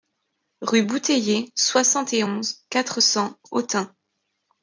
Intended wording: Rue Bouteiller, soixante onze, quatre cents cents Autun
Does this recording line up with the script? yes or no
no